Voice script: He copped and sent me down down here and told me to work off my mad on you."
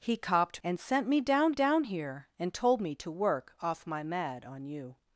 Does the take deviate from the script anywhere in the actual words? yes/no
no